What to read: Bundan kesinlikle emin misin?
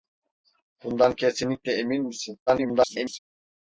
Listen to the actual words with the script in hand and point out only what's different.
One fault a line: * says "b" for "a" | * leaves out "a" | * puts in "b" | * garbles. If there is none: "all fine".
* garbles